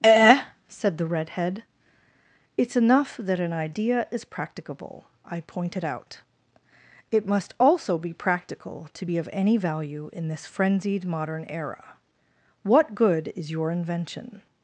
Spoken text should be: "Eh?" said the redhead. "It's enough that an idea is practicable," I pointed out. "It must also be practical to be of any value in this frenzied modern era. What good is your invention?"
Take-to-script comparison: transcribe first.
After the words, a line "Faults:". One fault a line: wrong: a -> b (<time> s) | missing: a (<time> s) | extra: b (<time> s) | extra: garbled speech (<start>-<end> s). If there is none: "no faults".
"Eh?" said the redhead. "It's enough that an idea is practicable," I pointed out. "It must also be practical to be of any value in this frenzied modern era. What good is your invention?"
Faults:
no faults